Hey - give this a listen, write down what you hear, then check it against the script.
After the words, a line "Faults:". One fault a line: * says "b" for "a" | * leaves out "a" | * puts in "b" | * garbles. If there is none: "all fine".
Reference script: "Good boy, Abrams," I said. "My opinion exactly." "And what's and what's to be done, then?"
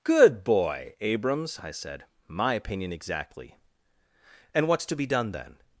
"Good boy, Abrams," I said. "My opinion exactly." "And what's to be done, then?"
Faults:
* leaves out "and what's"